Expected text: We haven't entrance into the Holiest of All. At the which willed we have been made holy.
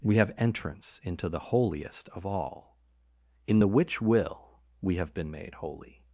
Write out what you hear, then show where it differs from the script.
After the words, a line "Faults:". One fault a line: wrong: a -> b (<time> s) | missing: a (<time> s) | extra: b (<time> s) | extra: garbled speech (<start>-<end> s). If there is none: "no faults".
We have entrance into the Holiest of All. In the which will we have been made holy.
Faults:
wrong: haven't -> have (0.1 s)
wrong: At -> In (3.5 s)
wrong: willed -> will (4.0 s)